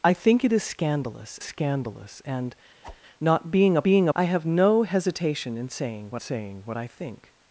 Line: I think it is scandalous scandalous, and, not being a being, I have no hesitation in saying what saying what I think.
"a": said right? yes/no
yes